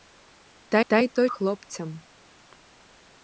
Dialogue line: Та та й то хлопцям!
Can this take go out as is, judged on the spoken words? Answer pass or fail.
pass